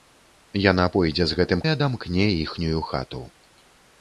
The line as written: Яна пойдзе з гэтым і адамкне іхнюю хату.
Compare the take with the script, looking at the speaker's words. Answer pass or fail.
pass